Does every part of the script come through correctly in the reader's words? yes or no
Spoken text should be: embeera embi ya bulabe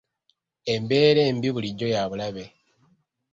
no